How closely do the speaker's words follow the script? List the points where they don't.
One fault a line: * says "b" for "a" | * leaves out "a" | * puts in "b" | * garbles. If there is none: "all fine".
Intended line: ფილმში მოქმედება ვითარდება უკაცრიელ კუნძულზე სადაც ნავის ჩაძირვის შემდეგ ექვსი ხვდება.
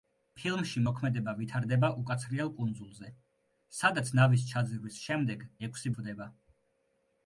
all fine